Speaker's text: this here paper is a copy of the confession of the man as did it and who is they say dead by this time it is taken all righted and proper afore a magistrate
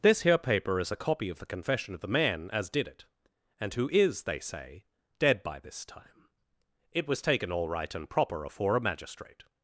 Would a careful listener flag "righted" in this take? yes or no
yes